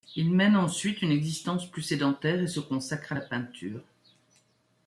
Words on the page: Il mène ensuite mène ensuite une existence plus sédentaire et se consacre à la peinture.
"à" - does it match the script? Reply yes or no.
yes